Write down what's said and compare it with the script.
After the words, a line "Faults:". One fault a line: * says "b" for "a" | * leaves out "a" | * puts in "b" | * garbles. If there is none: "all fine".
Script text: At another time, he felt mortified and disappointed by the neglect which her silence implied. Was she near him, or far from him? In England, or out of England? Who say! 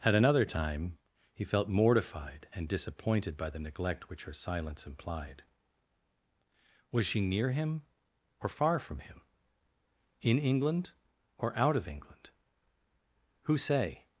At another time, he felt mortified and disappointed by the neglect which her silence implied. Was she near him, or far from him? In England, or out of England? Who say!
Faults:
all fine